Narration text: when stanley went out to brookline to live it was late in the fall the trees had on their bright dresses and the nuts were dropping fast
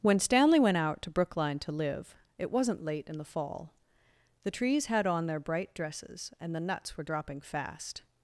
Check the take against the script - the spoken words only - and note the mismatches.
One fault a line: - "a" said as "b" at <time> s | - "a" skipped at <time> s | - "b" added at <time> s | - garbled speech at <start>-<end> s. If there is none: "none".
- "was" said as "wasn't" at 2.5 s